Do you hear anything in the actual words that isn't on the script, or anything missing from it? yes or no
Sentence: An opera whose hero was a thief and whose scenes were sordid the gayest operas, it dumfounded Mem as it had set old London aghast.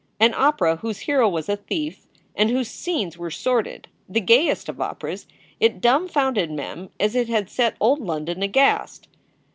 yes